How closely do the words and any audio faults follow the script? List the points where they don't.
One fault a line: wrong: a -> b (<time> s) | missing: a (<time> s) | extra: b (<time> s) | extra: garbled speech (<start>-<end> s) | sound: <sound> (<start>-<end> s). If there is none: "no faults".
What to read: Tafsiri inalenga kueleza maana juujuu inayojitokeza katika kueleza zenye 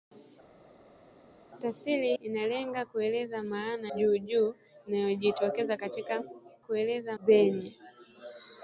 no faults